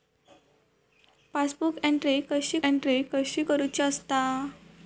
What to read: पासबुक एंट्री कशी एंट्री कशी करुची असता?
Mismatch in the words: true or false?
false